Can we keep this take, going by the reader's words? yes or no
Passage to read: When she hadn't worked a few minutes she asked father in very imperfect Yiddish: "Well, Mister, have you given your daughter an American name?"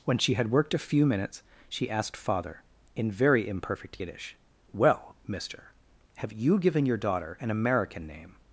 no